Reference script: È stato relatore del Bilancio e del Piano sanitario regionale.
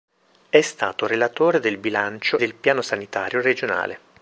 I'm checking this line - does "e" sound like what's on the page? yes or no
no